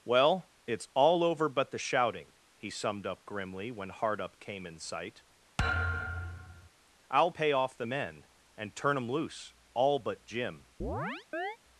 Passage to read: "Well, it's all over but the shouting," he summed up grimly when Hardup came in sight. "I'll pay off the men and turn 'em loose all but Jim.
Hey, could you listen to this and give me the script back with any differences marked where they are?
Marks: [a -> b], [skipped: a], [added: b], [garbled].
"Well, it's all over but the shouting," he summed up grimly when Hardup came in sight. "I'll pay off the men and turn 'em loose all but Jim.